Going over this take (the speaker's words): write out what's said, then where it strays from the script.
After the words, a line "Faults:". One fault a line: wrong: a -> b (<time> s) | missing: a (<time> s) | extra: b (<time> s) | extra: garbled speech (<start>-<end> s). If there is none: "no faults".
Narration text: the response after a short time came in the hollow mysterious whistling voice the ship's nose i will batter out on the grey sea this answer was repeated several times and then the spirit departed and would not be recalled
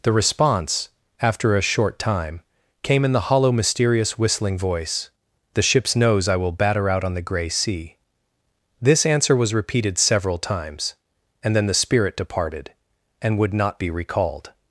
the response after a short time came in the hollow mysterious whistling voice the ship's nose i will batter out on the grey sea this answer was repeated several times and then the spirit departed and would not be recalled
Faults:
no faults